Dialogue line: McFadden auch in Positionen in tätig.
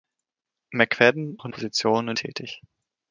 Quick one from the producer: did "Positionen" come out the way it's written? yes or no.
yes